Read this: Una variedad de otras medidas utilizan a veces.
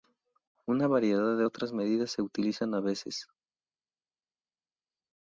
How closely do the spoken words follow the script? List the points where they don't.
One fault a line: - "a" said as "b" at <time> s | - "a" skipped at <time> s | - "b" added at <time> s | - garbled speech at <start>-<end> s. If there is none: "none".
- "se" added at 2.1 s